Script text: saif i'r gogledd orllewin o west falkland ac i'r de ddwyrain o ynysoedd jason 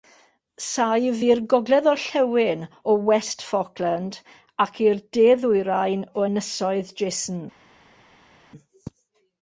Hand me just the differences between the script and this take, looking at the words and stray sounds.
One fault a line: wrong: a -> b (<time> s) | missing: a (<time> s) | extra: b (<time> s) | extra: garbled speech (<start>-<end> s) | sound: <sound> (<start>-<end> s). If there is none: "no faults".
no faults